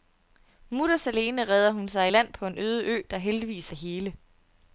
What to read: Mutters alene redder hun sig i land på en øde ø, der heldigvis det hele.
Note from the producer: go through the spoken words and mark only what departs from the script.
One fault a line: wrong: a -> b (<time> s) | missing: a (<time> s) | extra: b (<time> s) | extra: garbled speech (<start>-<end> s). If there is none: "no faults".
no faults